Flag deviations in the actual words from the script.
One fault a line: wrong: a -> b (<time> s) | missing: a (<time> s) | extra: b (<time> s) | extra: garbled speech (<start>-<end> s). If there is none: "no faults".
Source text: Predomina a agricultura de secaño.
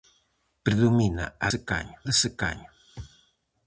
wrong: agricultura -> secaño (1.5 s)